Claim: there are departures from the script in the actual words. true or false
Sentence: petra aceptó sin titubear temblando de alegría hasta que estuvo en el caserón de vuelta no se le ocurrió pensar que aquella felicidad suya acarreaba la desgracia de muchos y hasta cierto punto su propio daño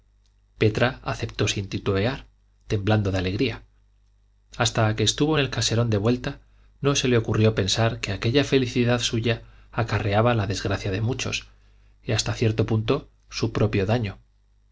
false